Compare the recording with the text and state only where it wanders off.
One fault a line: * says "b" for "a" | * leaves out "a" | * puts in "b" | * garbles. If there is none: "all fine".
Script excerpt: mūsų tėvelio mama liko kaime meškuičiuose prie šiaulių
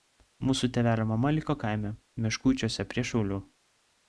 all fine